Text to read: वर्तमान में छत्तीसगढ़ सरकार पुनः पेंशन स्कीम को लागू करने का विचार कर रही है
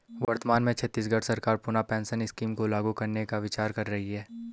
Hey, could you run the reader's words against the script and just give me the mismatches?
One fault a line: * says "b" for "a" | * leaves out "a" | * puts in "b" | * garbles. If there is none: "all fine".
all fine